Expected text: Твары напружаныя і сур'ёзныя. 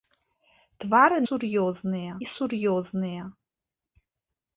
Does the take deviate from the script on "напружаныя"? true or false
true